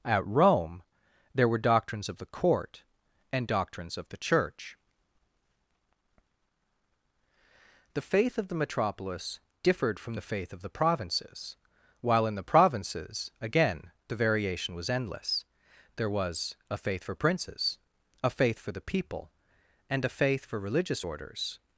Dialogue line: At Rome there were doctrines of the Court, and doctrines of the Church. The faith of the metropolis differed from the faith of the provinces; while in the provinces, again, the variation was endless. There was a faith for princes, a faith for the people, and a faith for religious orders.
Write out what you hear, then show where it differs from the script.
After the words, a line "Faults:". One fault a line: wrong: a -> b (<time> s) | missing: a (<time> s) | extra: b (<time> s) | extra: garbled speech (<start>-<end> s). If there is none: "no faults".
At Rome there were doctrines of the Court, and doctrines of the Church. The faith of the metropolis differed from the faith of the provinces; while in the provinces, again, the variation was endless. There was a faith for princes, a faith for the people, and a faith for religious orders.
Faults:
no faults